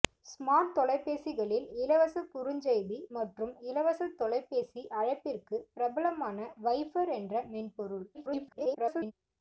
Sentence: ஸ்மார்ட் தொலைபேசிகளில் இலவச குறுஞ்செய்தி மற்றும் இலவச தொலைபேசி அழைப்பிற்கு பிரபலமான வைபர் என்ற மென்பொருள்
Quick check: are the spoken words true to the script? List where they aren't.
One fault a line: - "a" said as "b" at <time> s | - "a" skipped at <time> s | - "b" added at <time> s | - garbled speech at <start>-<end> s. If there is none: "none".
- garbled speech at 8.1-9.1 s